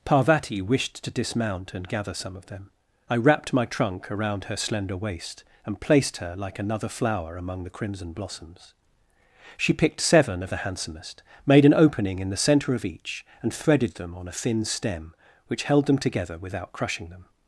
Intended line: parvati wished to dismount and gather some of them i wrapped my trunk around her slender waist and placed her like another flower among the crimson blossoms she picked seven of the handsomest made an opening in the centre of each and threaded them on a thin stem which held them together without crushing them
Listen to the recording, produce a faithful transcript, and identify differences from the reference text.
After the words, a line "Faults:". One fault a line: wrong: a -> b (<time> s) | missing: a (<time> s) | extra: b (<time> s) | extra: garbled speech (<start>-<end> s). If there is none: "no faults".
parvati wished to dismount and gather some of them i wrapped my trunk around her slender waist and placed her like another flower among the crimson blossoms she picked seven of the handsomest made an opening in the centre of each and threaded them on a thin stem which held them together without crushing them
Faults:
no faults